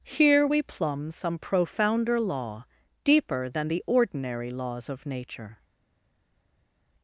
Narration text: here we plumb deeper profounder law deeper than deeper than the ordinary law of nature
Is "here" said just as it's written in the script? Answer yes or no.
yes